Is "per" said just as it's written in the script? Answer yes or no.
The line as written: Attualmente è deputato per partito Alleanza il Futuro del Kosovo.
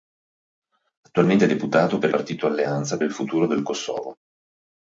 yes